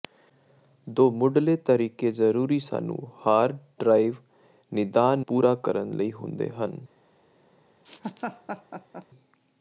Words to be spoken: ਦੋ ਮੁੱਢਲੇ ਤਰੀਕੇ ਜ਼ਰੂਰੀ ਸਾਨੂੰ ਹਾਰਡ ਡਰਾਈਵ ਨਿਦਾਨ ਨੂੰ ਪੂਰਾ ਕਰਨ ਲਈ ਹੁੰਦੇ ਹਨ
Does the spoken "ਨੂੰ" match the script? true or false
false